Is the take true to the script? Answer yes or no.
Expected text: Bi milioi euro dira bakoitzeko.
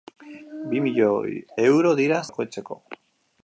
yes